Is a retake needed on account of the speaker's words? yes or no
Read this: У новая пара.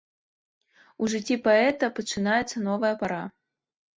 yes